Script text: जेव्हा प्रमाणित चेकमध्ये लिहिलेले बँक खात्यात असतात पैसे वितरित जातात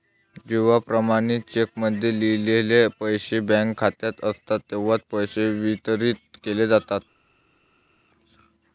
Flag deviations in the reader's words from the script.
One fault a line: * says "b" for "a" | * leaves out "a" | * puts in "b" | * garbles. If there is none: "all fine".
* puts in "पैसे"
* puts in "तेव्हाच"
* puts in "केले"